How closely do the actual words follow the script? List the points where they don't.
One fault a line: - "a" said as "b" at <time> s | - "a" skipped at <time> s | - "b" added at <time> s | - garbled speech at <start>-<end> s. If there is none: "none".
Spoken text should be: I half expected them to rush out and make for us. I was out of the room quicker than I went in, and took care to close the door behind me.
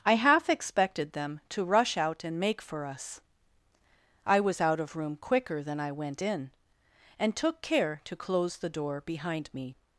- "the" skipped at 5.0 s